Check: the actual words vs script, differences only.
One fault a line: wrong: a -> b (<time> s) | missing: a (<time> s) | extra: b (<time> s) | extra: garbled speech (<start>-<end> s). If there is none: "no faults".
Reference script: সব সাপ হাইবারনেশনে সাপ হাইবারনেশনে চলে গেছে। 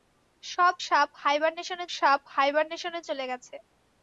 no faults